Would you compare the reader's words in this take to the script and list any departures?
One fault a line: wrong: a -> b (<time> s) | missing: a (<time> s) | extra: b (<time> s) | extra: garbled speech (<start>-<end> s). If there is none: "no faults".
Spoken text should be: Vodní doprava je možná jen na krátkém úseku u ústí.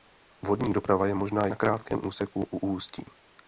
missing: jen (1.5 s)